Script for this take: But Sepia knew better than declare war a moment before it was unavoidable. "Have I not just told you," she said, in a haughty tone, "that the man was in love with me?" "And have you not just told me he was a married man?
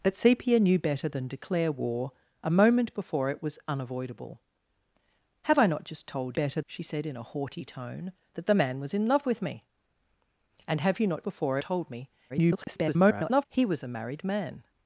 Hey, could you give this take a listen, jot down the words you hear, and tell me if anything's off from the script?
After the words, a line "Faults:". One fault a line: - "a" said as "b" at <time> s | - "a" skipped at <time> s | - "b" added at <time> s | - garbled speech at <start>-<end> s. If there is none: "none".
But Sepia knew better than declare war a moment before it was unavoidable. "Have I not just told better," she said, in a haughty tone, "that the man was in love with me?" "And have you not before told me [garbled] he was a married man?
Faults:
- "you" said as "better" at 6.3 s
- "just" said as "before" at 11.2 s
- garbled speech at 12.3-13.5 s